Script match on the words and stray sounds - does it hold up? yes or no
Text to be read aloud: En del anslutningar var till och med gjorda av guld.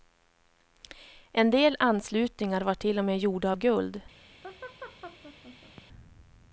no